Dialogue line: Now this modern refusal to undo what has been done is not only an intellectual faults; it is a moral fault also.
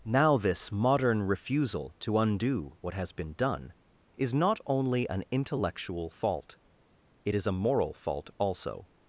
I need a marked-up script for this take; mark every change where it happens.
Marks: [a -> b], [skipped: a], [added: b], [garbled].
Now this modern refusal to undo what has been done is not only an intellectual [faults; -> fault] it is a moral fault also.